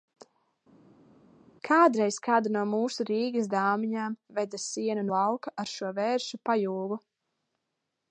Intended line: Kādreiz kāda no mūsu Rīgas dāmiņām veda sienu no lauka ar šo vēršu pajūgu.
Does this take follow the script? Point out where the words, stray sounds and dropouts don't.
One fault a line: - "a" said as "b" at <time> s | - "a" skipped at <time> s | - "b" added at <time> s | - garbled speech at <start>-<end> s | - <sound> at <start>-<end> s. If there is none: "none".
- "no" skipped at 5.1 s